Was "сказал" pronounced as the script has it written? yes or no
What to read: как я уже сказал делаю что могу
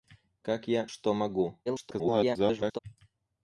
no